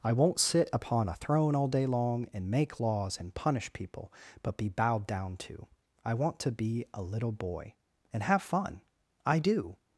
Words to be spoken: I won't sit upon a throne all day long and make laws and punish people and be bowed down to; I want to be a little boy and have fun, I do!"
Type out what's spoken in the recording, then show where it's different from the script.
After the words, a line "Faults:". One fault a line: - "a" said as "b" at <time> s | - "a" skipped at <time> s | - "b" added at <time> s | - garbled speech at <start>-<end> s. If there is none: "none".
I won't sit upon a throne all day long and make laws and punish people but be bowed down to; I want to be a little boy and have fun, I do!"
Faults:
- "and" said as "but" at 4.4 s